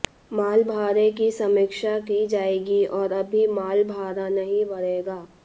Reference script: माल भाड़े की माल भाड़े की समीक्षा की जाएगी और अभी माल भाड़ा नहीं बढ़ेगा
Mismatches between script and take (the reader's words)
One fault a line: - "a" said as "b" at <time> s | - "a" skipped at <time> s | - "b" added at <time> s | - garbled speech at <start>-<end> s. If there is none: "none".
- "माल भाड़े की" skipped at 1.3 s